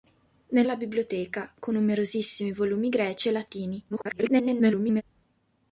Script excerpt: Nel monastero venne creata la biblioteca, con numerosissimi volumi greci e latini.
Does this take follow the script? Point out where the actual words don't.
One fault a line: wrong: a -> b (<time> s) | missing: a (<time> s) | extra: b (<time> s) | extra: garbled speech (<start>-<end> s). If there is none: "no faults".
missing: monastero venne creata (0.7 s)
extra: garbled speech (3.9-5.0 s)